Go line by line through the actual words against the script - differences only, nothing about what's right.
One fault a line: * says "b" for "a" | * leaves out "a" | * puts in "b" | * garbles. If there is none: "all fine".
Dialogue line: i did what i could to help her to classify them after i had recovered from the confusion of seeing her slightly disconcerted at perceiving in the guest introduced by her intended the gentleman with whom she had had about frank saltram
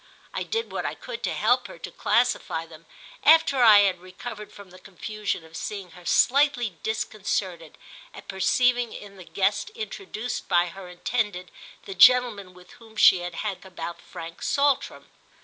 all fine